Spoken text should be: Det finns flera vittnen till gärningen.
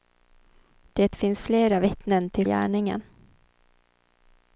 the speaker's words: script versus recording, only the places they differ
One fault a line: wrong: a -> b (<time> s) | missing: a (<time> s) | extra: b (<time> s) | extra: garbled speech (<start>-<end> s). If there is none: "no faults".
no faults